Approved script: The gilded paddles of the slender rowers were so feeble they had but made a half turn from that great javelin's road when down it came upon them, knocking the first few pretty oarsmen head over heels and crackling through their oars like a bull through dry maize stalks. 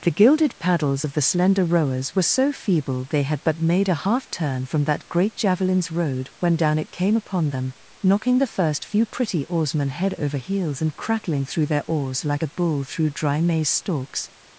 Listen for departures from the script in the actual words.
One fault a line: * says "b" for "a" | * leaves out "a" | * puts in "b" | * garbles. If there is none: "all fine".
all fine